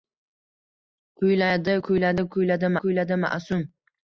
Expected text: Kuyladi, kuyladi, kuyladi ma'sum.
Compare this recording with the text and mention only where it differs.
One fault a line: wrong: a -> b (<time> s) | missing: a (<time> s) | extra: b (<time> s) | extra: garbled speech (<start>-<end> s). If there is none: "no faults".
extra: kuyladi (2.8 s)